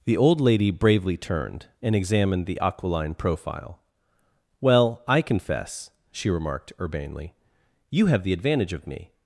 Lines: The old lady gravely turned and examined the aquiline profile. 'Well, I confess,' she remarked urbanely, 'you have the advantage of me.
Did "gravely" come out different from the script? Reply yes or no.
yes